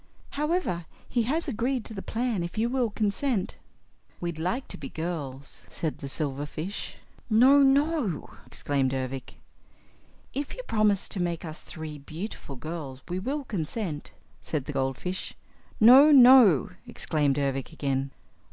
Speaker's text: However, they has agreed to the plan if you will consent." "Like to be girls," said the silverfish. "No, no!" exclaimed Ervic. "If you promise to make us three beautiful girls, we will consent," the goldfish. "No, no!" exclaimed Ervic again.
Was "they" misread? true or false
true